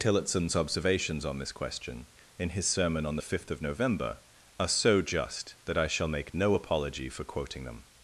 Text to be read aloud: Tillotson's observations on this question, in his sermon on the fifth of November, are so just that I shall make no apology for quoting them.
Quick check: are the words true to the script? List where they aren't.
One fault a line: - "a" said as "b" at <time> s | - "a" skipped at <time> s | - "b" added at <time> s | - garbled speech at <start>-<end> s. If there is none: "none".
none